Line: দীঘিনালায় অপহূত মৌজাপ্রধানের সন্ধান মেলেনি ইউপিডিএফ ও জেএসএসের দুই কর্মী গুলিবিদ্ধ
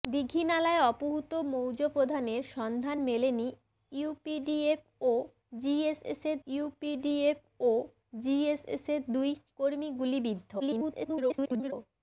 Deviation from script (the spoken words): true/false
true